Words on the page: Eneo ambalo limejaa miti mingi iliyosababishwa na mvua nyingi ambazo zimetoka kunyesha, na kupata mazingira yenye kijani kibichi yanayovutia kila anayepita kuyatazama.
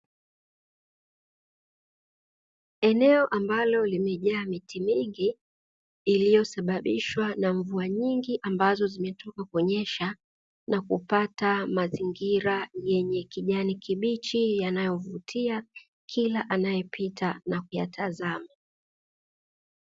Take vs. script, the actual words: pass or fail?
fail